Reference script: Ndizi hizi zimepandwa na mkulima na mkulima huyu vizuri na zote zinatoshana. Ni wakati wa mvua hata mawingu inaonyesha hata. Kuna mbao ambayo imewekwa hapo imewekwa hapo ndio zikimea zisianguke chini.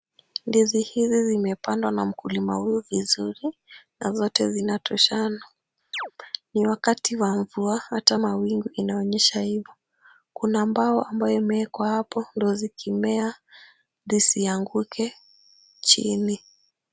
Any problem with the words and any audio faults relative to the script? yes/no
yes